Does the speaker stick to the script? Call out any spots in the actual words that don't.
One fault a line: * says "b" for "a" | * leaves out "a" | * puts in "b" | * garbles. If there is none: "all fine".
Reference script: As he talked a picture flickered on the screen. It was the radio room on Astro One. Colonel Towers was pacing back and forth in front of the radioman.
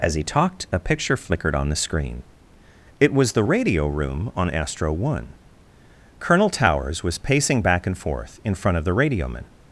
all fine